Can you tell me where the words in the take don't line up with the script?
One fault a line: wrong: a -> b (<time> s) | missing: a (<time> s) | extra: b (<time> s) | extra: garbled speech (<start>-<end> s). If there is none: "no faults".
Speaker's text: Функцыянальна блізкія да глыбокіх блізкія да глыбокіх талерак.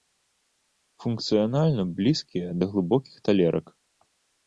missing: блізкія да глыбокіх (3.1 s)